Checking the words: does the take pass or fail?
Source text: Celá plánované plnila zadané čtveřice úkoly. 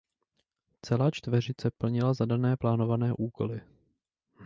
fail